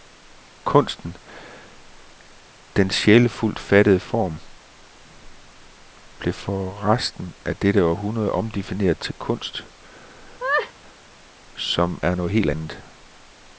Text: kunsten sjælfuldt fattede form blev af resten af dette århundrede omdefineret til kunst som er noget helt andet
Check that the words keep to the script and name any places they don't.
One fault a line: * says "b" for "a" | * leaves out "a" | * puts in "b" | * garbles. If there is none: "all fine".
* puts in "den"
* says "for" for "af"